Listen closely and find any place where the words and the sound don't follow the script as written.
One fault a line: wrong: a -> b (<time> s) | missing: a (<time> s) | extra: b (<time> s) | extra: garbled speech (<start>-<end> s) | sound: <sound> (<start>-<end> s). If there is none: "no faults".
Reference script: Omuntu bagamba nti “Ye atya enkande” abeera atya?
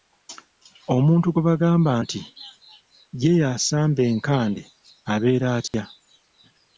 extra: gwe (1.3 s)
wrong: atya -> yasamba (3.4 s)
sound: dropout (5.7-5.7 s)